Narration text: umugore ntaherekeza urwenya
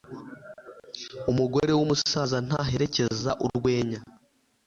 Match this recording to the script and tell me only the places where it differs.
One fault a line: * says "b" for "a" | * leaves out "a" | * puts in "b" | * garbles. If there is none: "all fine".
* puts in "w'umusaza"